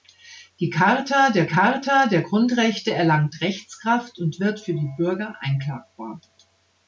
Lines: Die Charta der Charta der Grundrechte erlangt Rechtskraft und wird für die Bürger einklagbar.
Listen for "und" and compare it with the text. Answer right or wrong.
right